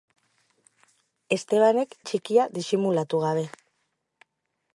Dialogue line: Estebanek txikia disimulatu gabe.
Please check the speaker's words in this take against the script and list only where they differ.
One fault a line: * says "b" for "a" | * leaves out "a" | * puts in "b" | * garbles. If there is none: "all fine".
all fine